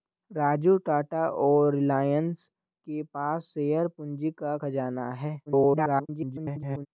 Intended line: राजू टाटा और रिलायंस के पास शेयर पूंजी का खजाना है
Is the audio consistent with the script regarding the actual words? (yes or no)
no